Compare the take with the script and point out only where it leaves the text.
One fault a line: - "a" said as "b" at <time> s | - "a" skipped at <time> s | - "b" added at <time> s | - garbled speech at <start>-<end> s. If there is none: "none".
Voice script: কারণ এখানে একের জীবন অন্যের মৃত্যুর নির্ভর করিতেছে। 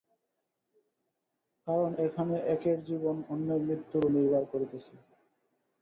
none